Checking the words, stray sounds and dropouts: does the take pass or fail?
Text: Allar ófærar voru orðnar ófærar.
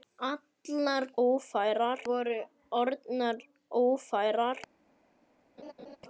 fail